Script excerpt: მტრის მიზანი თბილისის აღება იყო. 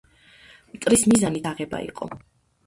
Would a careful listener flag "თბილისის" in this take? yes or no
yes